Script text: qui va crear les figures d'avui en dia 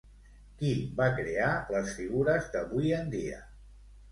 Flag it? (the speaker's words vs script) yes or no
no